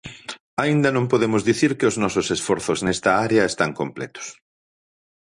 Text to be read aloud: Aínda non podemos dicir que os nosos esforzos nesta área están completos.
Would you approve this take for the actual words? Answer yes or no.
yes